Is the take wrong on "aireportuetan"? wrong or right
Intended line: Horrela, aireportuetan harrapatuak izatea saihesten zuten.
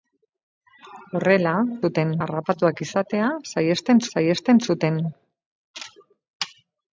wrong